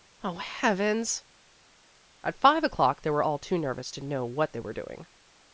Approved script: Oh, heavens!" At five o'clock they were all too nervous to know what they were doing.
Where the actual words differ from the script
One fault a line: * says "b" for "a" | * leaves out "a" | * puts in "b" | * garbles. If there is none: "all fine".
all fine